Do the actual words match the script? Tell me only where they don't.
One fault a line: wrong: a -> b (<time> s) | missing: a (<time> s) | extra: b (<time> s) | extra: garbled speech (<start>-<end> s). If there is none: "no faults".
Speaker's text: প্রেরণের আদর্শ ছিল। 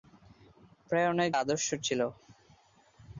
no faults